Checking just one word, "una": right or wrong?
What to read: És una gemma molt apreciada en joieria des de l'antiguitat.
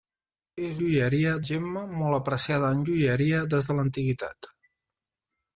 wrong